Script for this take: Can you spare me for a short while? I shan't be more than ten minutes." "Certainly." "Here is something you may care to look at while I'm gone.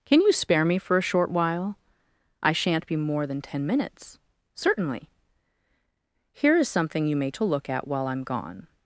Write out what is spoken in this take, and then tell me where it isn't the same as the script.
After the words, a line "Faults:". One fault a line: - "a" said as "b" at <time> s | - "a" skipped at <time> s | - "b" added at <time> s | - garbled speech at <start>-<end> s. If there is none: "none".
Can you spare me for a short while? I shan't be more than ten minutes." "Certainly." "Here is something you may to look at while I'm gone.
Faults:
- "care" skipped at 7.3 s